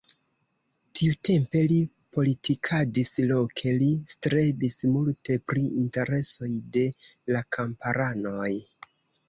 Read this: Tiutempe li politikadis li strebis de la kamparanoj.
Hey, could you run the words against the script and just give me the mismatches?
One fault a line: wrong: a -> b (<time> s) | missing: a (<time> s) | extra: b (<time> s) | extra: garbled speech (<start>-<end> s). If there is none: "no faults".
extra: loke (3.3 s)
extra: multe pri interesoj (5.0 s)